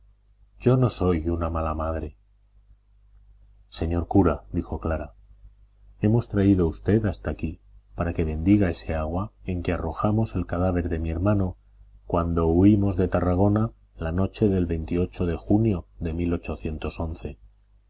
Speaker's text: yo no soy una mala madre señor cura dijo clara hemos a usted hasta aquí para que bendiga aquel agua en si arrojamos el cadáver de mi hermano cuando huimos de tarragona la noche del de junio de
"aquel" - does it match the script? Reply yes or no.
no